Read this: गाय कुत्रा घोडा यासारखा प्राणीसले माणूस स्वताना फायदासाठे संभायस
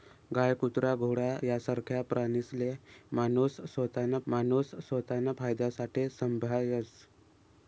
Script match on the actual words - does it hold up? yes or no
no